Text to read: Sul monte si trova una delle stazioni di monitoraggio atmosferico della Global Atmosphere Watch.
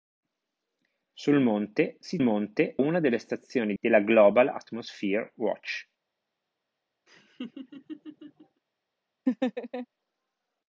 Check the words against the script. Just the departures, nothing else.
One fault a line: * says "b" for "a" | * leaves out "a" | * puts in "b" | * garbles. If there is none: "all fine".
* says "monte" for "trova"
* leaves out "di monitoraggio atmosferico"